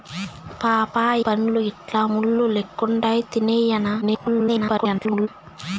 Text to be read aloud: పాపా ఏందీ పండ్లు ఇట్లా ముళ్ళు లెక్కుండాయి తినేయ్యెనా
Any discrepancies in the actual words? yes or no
yes